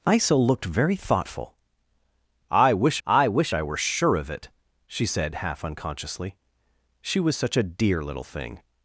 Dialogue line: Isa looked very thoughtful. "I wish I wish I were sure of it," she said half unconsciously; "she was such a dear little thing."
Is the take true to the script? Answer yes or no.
yes